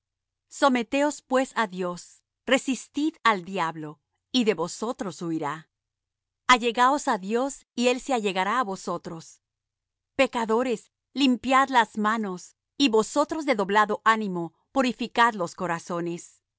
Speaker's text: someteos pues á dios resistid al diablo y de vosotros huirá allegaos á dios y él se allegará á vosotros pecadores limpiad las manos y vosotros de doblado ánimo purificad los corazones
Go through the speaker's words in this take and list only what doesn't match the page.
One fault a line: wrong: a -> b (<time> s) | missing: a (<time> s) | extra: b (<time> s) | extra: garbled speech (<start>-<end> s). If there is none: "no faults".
no faults